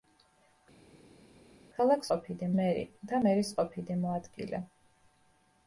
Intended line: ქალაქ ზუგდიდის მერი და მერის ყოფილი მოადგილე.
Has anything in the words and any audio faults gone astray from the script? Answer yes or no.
yes